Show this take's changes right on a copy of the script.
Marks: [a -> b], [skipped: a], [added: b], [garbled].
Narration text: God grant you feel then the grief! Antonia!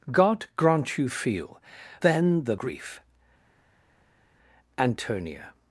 God grant you feel then the grief! Antonia!